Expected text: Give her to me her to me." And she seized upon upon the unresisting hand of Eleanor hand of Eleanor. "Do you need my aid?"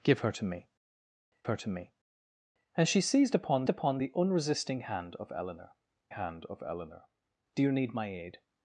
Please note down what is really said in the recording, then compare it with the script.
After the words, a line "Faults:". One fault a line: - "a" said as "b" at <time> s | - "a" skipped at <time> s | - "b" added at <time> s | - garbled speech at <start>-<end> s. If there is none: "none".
Give her to me her to me." And she seized upon upon the unresisting hand of Eleanor hand of Eleanor. "Do you need my aid?"
Faults:
none